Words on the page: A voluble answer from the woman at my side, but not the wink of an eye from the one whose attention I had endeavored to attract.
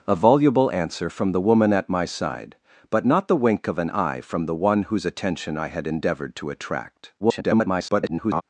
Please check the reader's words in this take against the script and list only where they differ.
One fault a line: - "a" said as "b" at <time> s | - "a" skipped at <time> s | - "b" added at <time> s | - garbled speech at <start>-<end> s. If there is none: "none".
- garbled speech at 7.2-8.4 s